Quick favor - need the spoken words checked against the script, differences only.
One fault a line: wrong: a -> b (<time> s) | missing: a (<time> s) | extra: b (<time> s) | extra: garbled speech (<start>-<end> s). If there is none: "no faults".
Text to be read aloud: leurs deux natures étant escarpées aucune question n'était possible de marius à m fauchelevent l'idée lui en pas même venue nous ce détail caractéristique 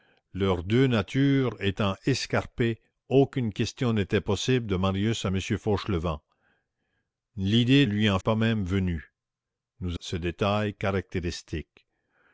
no faults